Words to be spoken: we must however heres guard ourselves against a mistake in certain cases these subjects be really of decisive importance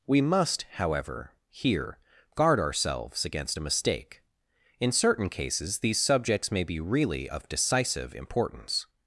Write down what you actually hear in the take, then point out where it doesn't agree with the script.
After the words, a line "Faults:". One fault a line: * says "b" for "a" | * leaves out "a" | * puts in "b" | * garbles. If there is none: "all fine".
we must however here guard ourselves against a mistake in certain cases these subjects may be really of decisive importance
Faults:
* says "here" for "heres"
* puts in "may"